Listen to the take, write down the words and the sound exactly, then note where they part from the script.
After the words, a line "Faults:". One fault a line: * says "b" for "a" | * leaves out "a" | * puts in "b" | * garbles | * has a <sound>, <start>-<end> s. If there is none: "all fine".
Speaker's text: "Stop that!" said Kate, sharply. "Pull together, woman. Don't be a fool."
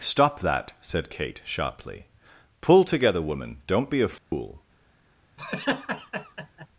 "Stop that!" said Kate, sharply. "Pull together, woman. Don't be a fool."
Faults:
* has a dropout, 4.2-4.3 s
* has a laugh, 5.4-6.7 s